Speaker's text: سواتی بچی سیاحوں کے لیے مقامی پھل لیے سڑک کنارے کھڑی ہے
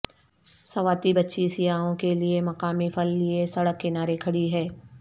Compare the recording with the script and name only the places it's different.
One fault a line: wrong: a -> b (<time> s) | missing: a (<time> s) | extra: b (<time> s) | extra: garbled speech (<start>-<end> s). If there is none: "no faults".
no faults